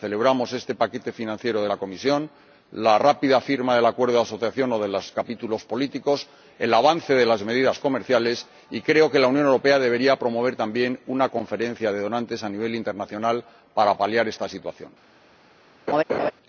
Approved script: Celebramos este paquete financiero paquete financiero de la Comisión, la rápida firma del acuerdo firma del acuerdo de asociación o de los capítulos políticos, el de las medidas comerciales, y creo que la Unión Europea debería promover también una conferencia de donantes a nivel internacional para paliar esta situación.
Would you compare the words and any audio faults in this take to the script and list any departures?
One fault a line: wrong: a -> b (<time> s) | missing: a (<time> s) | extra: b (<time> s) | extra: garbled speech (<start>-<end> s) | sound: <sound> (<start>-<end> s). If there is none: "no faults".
missing: paquete financiero (1.6 s)
missing: firma del acuerdo (4.2 s)
extra: avance (6.7 s)
sound: laugh (15.9-16.3 s)